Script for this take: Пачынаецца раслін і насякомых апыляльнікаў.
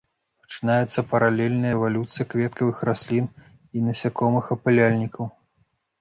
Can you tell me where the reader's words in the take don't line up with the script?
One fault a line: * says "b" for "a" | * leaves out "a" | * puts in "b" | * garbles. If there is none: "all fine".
* puts in "паралельная эвалюцыя кветкавых"